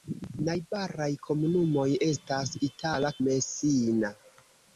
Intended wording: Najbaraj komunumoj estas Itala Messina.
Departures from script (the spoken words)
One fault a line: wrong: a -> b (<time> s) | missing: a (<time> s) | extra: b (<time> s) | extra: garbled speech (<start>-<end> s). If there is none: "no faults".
no faults